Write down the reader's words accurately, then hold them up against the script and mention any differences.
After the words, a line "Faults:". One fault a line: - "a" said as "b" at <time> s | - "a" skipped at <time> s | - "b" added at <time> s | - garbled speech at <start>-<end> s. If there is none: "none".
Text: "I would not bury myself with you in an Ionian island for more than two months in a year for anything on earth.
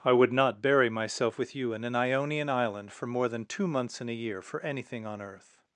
"I would not bury myself with you in an Ionian island for more than two months in a year for anything on earth.
Faults:
none